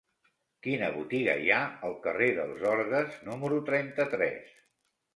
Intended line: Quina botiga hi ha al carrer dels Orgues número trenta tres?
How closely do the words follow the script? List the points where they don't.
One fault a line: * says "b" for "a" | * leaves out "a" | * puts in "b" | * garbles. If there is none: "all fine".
all fine